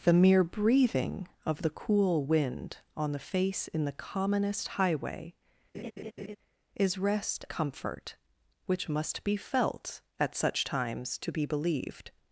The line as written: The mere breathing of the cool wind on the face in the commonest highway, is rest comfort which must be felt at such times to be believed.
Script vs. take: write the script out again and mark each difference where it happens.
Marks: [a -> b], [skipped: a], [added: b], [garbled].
The mere breathing of the cool wind on the face in the commonest highway, is rest comfort which must be felt at such times to be believed.